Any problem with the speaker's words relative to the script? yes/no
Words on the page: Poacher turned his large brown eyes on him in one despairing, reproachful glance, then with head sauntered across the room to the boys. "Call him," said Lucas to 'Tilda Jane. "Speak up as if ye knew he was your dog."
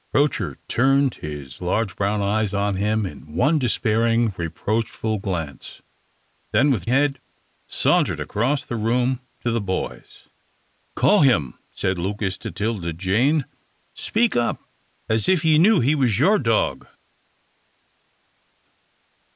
no